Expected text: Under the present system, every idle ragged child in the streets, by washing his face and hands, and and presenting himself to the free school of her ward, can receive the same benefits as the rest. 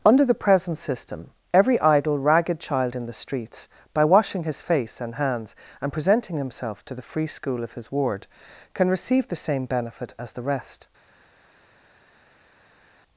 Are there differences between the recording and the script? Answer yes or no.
yes